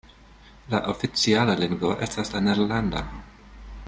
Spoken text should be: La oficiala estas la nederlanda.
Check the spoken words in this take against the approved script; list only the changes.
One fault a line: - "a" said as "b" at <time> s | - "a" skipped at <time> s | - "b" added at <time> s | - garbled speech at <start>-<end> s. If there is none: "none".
- "lingvo" added at 1.6 s